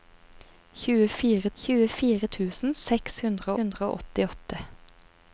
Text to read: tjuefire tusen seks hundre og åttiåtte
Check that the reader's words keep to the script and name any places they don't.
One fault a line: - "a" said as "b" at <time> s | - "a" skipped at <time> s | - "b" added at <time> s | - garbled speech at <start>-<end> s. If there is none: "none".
- "tjuefire" added at 1.6 s
- "hundre" added at 3.6 s